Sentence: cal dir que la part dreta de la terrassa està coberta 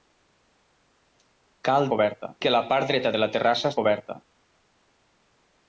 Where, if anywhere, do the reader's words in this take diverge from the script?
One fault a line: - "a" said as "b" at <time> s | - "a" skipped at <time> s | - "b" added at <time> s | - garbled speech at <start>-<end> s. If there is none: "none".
- "dir" said as "coberta" at 1.9 s
- "està" skipped at 3.7 s